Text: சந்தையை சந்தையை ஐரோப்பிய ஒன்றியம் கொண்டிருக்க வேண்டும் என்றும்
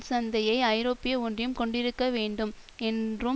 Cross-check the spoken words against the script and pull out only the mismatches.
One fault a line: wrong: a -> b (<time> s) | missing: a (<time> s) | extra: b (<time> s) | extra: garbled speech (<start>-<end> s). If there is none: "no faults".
missing: சந்தையை (0.6 s)